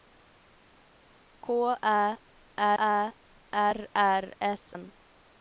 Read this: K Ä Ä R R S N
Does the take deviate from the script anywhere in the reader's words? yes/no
no